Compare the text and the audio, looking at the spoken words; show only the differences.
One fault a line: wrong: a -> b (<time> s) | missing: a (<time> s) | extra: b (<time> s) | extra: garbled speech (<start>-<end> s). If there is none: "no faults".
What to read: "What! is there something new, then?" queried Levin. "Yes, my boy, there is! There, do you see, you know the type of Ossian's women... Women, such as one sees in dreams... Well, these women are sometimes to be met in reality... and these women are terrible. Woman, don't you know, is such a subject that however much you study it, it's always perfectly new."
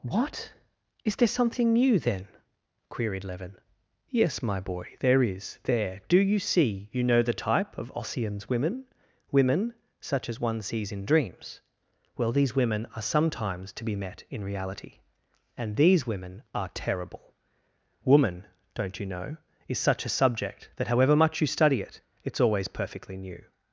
no faults